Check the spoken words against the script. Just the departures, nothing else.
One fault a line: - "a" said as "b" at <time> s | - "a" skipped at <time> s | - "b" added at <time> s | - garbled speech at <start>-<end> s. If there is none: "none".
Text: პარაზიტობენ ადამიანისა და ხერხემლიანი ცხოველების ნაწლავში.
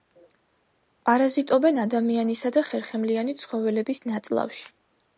none